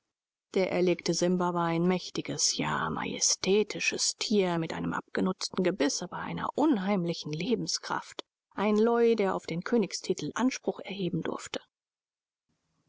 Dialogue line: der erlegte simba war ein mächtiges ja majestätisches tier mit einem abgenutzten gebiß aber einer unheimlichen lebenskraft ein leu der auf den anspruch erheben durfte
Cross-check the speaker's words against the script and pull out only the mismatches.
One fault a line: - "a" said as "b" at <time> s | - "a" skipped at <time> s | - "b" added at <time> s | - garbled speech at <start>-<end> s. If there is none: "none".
- "königstitel" added at 9.6 s